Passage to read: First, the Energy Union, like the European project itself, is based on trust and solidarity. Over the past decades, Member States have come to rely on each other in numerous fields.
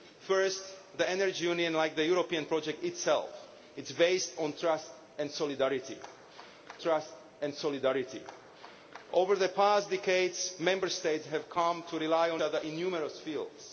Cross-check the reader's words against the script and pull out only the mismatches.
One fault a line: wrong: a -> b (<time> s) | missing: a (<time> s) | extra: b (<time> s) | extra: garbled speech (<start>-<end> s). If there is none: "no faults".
extra: trust and solidarity (6.8 s)
missing: each (12.4 s)